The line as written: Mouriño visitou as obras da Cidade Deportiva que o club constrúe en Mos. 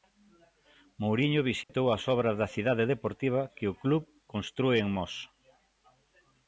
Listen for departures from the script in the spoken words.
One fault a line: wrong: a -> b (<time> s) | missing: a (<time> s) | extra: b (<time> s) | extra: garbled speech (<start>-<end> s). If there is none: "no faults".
no faults